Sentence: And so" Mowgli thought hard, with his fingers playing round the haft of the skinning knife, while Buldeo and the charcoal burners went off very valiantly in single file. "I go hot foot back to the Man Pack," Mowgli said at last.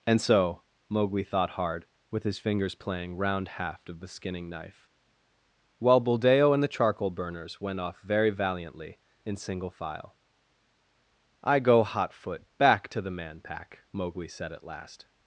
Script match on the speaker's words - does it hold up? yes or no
no